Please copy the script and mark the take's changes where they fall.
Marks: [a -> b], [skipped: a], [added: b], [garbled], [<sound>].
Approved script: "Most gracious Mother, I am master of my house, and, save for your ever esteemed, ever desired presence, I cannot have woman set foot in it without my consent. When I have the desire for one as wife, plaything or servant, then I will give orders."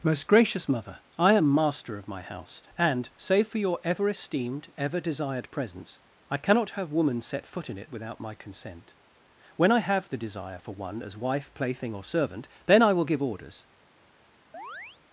"Most gracious Mother, I am master of my house, and, save for your ever esteemed, ever desired presence, I cannot have woman set foot in it without my consent. When I have the desire for one as wife, plaything or servant, then I will give orders." [chirp]